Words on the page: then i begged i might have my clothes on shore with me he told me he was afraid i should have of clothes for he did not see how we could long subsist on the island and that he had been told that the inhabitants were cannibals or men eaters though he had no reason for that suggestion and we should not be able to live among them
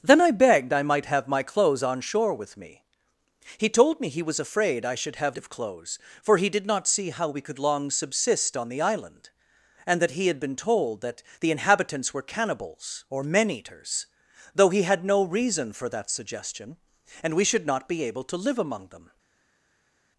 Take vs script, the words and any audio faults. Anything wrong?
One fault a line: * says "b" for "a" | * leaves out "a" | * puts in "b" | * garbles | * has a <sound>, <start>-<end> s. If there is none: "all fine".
all fine